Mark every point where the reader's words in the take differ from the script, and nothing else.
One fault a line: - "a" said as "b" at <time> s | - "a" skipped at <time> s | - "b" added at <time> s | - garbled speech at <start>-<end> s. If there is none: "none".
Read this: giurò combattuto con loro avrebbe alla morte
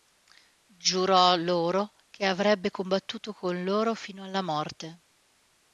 - "loro che avrebbe" added at 1.4 s
- "avrebbe" said as "fino" at 3.9 s